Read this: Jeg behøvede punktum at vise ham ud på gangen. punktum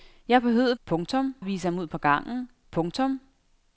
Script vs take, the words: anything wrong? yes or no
no